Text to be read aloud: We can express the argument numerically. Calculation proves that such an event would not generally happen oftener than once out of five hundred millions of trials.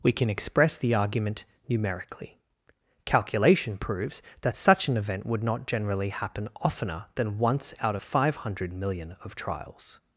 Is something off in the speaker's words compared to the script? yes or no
yes